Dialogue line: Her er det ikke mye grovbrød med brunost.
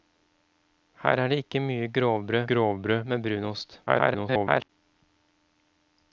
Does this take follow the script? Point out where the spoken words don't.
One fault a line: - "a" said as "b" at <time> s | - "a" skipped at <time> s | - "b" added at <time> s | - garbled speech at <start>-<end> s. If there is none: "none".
- "grovbrød" added at 2.5 s
- garbled speech at 3.9-4.7 s